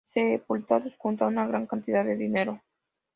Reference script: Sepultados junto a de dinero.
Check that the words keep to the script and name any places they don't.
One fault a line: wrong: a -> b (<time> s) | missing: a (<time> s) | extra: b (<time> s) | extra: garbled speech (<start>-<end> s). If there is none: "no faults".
extra: una gran cantidad (1.3 s)